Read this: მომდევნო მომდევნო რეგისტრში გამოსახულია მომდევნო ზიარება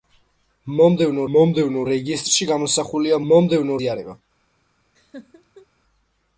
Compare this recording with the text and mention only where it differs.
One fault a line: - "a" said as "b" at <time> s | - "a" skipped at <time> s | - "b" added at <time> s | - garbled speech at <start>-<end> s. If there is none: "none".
none